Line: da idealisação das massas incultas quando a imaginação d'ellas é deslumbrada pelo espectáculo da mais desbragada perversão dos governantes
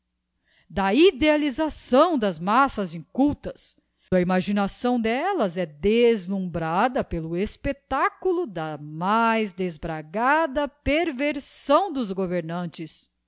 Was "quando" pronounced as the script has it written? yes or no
no